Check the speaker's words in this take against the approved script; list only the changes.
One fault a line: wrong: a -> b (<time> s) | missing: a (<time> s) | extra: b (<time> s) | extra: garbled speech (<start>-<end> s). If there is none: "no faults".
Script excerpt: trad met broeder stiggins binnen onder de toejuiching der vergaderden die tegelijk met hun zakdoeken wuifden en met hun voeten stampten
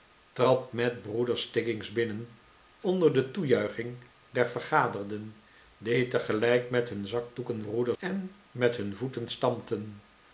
wrong: wuifden -> broeder (7.6 s)